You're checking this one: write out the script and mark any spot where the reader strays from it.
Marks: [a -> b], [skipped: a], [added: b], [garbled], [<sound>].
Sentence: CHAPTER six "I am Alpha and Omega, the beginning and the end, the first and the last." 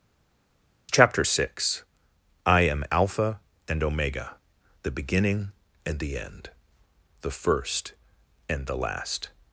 CHAPTER six "I am Alpha and Omega, the beginning and the end, the first and the last."